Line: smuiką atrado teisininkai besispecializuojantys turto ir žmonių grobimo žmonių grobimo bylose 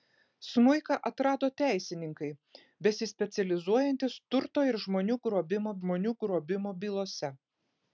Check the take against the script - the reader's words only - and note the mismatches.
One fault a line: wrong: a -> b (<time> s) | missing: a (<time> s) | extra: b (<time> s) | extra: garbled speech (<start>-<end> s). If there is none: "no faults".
no faults